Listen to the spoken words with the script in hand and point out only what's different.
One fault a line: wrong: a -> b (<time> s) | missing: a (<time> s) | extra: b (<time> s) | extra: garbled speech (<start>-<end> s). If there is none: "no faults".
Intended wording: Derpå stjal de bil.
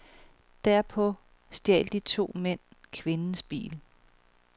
extra: to mænd kvindens (2.0 s)